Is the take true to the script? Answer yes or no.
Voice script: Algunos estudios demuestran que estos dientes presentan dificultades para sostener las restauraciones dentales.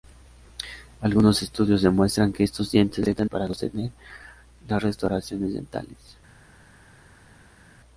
no